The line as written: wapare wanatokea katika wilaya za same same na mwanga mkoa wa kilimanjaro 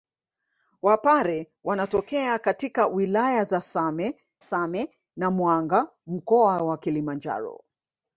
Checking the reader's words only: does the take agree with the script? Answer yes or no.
yes